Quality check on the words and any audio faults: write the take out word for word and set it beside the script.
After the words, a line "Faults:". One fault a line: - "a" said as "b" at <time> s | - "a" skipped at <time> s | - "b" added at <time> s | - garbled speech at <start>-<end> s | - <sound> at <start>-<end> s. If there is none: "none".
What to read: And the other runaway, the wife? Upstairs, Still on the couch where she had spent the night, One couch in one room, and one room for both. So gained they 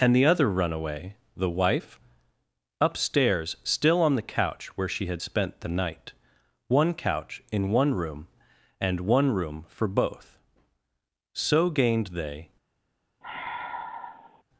And the other runaway, the wife? Upstairs, Still on the couch where she had spent the night, One couch in one room, and one room for both. So gained they
Faults:
- sigh at 13.2-14.4 s